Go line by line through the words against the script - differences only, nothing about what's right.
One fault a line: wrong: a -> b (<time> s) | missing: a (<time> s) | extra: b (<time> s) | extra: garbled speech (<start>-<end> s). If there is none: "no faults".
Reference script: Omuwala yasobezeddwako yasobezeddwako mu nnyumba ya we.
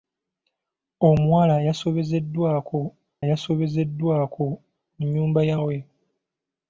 no faults